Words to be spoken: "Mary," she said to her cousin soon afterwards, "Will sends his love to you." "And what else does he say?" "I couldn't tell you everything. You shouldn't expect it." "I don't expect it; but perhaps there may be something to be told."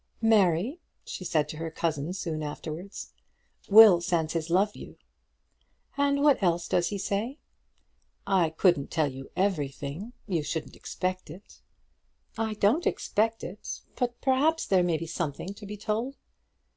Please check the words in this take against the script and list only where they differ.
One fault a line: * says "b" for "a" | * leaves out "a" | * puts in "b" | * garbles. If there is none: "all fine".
* leaves out "to"